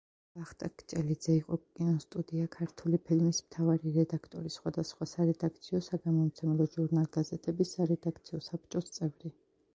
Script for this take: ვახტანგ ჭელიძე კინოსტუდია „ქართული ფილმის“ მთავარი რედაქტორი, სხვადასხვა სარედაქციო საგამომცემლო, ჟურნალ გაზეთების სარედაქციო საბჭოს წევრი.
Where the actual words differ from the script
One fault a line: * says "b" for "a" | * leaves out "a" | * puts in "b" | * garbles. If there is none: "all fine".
* puts in "იყო"